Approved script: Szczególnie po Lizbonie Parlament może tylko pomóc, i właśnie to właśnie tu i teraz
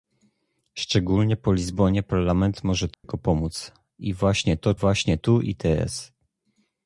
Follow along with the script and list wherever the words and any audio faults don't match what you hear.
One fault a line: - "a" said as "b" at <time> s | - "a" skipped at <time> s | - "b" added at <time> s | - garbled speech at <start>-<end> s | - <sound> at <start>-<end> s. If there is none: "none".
- dropout at 2.9-3.0 s